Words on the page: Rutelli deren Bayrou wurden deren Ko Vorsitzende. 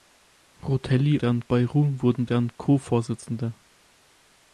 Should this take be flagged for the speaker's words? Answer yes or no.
no